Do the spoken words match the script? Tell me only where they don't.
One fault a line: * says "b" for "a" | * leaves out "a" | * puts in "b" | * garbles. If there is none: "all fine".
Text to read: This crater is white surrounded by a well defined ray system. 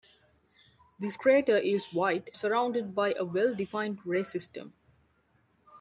all fine